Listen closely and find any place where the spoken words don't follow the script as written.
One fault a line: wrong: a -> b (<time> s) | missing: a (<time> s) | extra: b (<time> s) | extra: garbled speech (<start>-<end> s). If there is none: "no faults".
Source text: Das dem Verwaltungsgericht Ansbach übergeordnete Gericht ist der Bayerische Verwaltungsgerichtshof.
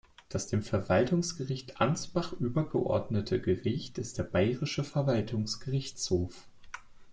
no faults